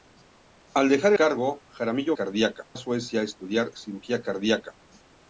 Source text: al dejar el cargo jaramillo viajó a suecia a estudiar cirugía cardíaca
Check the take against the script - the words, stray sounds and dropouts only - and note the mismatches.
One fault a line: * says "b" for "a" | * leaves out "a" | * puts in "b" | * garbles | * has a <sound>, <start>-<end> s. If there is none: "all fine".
* leaves out "el"
* says "cardíaca" for "viajó"